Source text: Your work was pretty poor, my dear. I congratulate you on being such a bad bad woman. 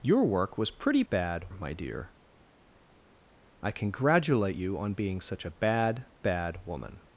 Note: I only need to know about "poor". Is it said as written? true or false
false